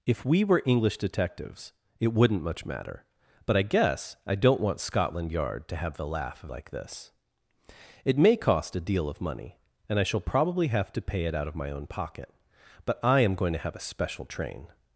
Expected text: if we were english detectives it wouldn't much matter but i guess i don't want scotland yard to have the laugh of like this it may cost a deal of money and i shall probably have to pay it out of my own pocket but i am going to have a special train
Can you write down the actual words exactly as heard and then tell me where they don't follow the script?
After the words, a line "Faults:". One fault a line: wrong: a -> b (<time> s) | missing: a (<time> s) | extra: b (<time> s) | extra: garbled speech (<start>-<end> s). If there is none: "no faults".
if we were english detectives it wouldn't much matter but i guess i don't want scotland yard to have the laugh of like this it may cost a deal of money and i shall probably have to pay it out of my own pocket but i am going to have a special train
Faults:
no faults